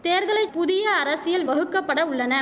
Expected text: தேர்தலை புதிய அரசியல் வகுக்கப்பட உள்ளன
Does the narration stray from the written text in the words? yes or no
no